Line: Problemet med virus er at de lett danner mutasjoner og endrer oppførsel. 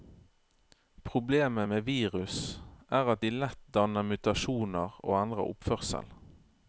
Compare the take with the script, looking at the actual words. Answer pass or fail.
pass